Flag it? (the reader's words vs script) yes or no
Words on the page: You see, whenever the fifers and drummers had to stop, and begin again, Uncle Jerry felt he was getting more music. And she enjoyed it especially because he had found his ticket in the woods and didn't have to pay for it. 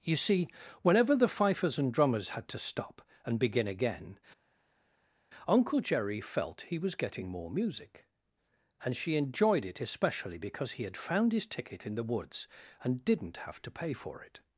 no